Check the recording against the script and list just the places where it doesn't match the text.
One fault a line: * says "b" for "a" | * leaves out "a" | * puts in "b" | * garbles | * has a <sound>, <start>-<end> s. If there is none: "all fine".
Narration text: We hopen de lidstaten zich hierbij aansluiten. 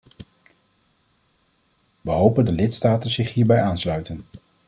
all fine